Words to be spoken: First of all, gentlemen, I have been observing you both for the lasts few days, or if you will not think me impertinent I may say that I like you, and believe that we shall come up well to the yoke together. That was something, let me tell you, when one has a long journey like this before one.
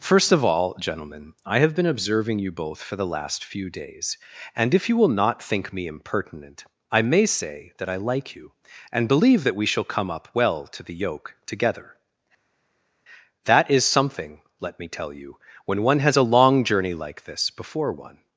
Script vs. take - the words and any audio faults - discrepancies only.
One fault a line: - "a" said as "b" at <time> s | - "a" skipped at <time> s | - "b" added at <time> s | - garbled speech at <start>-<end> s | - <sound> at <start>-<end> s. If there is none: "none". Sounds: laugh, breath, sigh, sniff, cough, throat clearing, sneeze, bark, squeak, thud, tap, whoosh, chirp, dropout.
- "lasts" said as "last" at 3.0 s
- "or" said as "and" at 4.5 s
- "was" said as "is" at 13.7 s